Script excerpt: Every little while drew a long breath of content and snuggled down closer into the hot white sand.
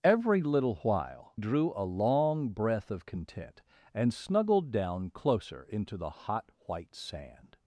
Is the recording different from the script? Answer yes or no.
no